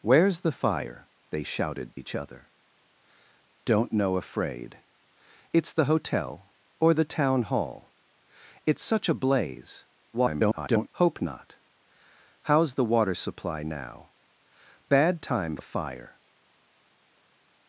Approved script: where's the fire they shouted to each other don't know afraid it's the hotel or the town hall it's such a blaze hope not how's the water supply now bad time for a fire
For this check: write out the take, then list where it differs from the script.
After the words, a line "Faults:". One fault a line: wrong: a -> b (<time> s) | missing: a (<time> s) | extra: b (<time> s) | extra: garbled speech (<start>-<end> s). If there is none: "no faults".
where's the fire they shouted each other don't know afraid it's the hotel or the town hall it's such a blaze [garbled] hope not how's the water supply now bad time a fire
Faults:
missing: to (2.0 s)
extra: garbled speech (10.1-10.9 s)
missing: for (15.6 s)